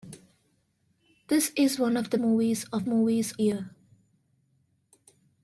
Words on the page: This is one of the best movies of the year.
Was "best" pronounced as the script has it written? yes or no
no